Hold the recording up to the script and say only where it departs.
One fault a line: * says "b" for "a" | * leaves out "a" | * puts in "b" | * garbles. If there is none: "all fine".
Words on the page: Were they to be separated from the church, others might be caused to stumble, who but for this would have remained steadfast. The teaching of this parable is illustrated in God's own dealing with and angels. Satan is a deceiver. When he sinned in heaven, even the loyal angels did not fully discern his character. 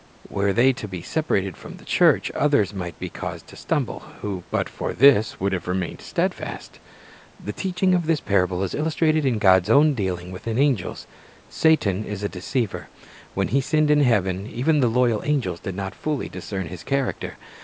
all fine